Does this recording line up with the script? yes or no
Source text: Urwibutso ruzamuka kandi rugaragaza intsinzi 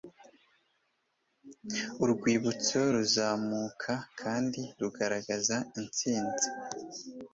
yes